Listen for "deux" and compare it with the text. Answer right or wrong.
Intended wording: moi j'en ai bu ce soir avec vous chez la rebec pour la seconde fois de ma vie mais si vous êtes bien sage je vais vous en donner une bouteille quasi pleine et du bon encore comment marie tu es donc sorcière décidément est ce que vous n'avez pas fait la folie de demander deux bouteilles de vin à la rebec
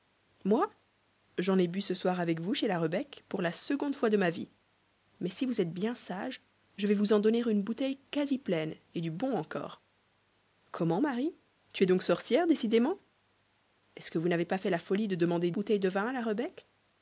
wrong